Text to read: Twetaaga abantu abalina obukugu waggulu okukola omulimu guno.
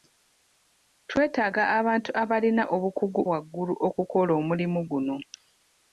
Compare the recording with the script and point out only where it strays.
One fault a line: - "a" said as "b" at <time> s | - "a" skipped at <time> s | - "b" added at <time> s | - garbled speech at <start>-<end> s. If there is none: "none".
none